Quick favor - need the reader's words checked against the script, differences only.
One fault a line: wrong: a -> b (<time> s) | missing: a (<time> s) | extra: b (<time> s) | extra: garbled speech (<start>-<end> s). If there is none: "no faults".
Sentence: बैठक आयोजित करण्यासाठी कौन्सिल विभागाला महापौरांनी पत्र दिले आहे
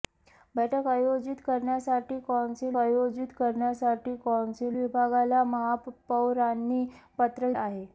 extra: आयोजित करण्यासाठी कौन्सिल (2.8 s)
missing: दिले (7.5 s)